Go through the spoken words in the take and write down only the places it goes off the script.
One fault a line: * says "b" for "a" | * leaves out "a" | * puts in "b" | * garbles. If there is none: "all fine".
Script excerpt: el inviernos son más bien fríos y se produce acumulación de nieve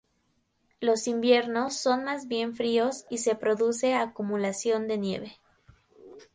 * says "los" for "el"